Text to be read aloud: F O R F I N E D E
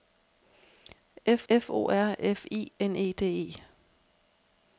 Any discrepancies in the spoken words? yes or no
yes